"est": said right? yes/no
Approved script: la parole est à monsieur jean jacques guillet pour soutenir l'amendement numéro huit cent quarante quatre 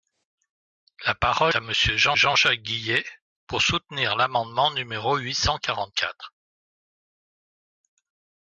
no